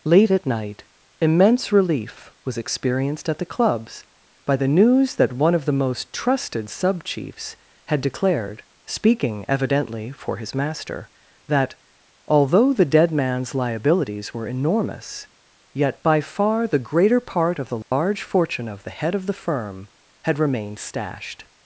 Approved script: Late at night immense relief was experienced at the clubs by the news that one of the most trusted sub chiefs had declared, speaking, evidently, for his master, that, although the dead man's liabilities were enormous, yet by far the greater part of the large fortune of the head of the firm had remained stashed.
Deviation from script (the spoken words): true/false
false